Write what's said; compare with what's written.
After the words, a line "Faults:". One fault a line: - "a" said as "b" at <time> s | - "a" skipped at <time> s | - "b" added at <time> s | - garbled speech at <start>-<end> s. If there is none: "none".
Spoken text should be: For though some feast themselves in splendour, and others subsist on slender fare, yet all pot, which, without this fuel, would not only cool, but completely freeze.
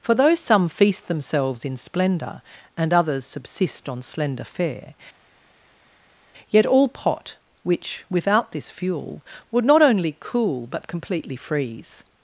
For though some feast themselves in splendour, and others subsist on slender fare, yet all pot, which, without this fuel, would not only cool, but completely freeze.
Faults:
none